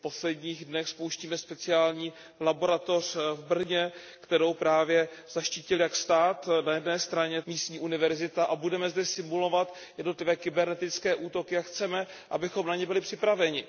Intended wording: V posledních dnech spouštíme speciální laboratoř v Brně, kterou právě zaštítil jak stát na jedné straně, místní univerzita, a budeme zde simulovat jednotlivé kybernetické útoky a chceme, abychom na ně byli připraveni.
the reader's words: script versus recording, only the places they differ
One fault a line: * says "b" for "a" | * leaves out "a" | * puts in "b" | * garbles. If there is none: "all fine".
all fine